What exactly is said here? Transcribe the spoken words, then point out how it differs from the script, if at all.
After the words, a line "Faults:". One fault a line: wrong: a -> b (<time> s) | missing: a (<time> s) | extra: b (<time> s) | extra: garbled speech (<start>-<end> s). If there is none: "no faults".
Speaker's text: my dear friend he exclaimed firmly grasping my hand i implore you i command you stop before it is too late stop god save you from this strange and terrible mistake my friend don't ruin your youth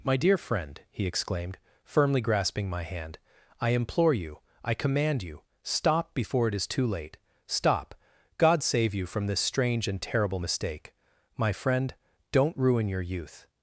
my dear friend he exclaimed firmly grasping my hand i implore you i command you stop before it is too late stop god save you from this strange and terrible mistake my friend don't ruin your youth
Faults:
no faults